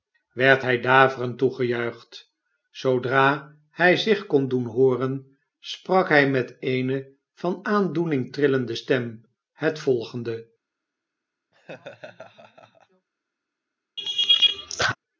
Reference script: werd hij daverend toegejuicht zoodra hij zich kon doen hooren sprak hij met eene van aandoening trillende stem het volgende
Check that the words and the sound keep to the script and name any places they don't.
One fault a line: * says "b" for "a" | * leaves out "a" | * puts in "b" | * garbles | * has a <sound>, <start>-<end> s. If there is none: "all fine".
* has a laugh, 11.5-13.1 s
* has a laugh, 14.0-15.0 s